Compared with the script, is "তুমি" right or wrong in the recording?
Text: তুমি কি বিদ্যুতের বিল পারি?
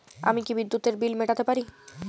wrong